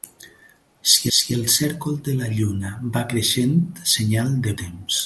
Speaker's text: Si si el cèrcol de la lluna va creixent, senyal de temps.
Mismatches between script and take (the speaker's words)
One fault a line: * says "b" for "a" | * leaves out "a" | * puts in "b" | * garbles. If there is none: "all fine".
all fine